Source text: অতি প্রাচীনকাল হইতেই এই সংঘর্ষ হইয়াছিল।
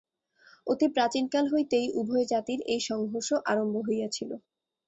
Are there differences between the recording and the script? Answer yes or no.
yes